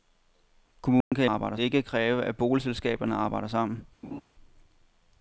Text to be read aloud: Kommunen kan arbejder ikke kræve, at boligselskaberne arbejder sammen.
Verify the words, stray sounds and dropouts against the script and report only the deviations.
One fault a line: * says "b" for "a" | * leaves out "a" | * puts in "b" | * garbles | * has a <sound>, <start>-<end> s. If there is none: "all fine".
* has a dropout, 1.0-1.1 s
* has a laugh, 4.0-4.2 s